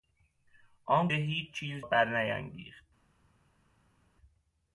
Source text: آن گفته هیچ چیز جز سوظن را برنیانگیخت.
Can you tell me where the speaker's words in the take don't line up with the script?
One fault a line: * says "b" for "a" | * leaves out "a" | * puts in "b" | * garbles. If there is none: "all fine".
* leaves out "گفته"
* leaves out "جز سوظن را"